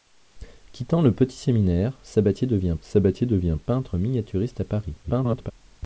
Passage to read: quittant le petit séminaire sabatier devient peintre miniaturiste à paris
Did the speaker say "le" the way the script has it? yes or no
yes